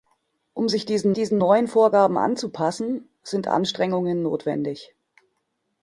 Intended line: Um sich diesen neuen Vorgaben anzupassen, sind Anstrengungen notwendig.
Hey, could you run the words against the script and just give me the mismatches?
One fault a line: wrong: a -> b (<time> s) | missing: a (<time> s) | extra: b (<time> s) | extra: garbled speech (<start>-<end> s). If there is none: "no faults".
extra: diesen (1.1 s)